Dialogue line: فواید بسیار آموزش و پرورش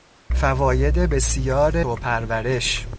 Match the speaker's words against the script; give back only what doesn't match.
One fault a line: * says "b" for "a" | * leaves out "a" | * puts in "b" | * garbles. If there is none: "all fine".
* leaves out "آموزش"